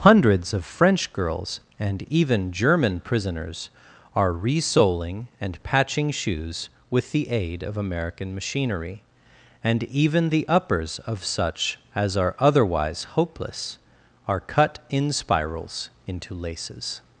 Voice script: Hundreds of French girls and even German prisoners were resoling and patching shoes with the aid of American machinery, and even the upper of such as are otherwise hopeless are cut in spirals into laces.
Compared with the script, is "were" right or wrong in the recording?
wrong